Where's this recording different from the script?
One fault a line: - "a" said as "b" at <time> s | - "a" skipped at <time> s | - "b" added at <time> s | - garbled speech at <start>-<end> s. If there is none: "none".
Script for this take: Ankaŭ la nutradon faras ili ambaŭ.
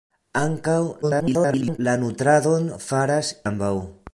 - garbled speech at 1.0-1.8 s
- "ili" skipped at 3.3 s